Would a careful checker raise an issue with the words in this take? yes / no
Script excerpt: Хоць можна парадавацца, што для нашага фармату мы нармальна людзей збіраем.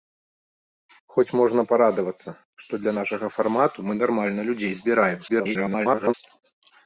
yes